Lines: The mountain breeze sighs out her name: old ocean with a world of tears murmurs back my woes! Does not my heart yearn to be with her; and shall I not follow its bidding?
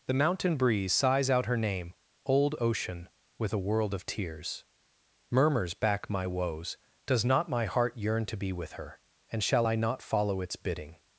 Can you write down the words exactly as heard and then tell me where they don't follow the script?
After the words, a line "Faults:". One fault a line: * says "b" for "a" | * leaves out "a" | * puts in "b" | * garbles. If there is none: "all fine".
The mountain breeze sighs out her name: old ocean with a world of tears murmurs back my woes! Does not my heart yearn to be with her; and shall I not follow its bidding?
Faults:
all fine